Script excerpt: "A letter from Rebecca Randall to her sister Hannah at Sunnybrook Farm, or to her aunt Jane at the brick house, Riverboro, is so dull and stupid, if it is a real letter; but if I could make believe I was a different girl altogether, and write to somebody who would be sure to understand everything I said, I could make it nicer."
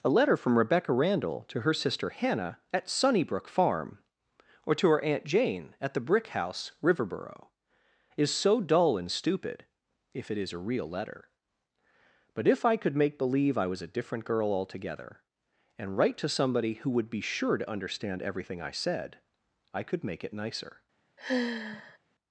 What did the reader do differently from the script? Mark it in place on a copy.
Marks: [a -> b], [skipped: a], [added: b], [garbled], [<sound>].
"A letter from Rebecca Randall to her sister Hannah at Sunnybrook Farm, or to her aunt Jane at the brick house, Riverboro, is so dull and stupid, if it is a real letter; but if I could make believe I was a different girl altogether, and write to somebody who would be sure to understand everything I said, I could make it nicer." [sigh]